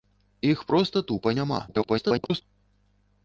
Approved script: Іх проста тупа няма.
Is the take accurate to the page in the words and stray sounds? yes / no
no